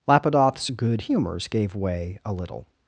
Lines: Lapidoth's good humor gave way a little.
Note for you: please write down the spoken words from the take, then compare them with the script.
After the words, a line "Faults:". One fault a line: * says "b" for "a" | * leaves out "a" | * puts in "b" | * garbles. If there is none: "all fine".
Lapidoth's good humors gave way a little.
Faults:
* says "humors" for "humor"